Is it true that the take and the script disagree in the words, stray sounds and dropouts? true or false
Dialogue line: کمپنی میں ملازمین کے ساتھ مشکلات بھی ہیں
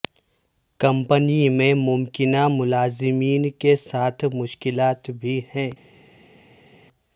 true